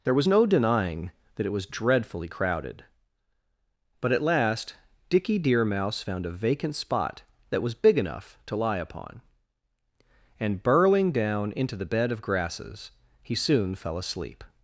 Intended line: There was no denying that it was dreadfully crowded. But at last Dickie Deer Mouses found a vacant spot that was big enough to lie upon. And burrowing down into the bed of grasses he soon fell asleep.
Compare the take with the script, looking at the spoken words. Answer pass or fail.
fail